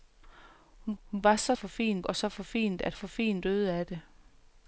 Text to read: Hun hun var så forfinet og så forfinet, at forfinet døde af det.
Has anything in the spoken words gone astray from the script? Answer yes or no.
no